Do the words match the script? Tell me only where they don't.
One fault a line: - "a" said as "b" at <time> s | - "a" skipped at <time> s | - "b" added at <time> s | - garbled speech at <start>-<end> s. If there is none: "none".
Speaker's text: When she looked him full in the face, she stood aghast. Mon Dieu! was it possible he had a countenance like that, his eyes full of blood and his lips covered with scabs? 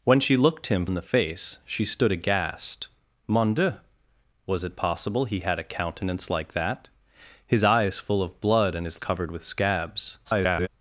- "full" skipped at 0.8 s
- "lips" skipped at 9.0 s
- garbled speech at 10.2-10.7 s